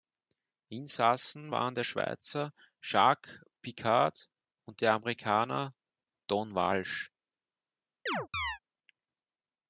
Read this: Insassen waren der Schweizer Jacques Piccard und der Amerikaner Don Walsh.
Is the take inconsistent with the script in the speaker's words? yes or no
no